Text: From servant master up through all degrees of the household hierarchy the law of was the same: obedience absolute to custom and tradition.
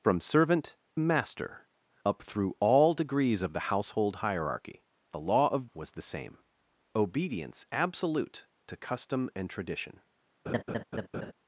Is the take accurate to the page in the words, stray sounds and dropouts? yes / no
no